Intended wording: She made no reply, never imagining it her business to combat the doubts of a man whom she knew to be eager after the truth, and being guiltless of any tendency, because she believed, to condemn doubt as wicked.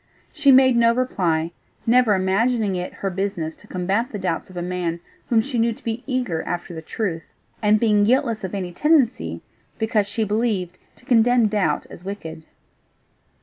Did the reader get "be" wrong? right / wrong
right